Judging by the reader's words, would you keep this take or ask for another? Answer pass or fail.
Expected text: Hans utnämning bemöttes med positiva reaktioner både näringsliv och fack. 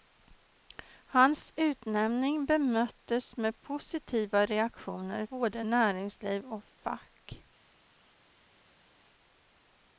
pass